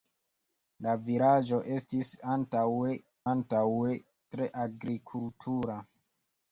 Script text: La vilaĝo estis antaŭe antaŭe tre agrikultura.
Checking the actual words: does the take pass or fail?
pass